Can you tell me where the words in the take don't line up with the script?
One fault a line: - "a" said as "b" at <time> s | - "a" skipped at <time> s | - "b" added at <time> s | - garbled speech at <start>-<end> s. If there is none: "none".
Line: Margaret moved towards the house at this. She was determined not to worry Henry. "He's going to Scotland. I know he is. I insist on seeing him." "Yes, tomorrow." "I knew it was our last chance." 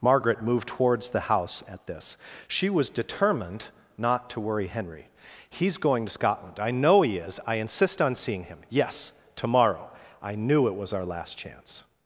none